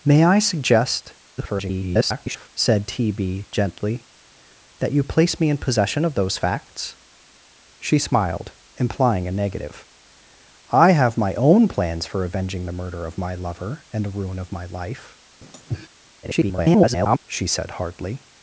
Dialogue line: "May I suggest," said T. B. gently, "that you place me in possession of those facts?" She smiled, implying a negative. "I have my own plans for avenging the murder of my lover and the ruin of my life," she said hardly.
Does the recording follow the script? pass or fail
fail